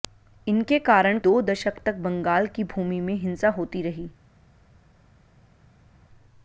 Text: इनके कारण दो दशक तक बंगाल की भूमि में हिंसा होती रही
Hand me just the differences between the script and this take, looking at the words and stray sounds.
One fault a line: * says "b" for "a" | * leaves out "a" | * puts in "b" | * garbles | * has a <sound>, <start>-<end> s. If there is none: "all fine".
all fine